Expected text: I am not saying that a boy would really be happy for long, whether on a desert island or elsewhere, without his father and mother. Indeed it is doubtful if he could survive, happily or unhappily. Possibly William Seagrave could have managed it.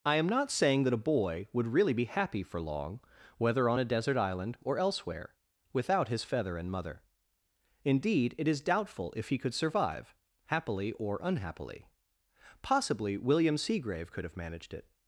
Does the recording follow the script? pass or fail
fail